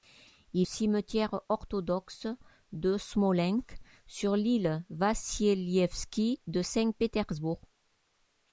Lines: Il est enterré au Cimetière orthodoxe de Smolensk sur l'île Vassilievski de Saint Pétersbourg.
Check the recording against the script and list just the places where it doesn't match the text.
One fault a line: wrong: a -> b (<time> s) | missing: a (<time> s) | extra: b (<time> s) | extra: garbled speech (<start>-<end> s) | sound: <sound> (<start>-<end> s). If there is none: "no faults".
missing: est enterré au (0.7 s)